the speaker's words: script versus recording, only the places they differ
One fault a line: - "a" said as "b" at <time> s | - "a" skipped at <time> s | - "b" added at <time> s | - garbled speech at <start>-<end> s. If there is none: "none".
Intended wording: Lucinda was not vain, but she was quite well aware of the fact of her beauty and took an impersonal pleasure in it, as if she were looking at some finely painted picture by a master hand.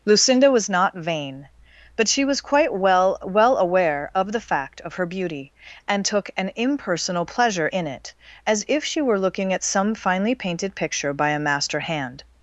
- "well" added at 3.2 s